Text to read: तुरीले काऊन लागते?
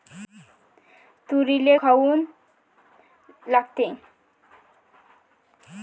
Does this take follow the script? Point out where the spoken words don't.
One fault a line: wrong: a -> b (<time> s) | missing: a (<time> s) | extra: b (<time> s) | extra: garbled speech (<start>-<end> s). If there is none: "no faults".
no faults